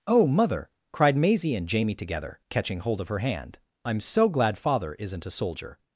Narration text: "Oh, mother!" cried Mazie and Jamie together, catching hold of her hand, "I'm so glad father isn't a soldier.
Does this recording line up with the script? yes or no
yes